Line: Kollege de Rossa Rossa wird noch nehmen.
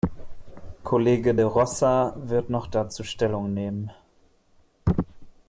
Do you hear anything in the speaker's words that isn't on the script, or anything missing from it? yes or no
yes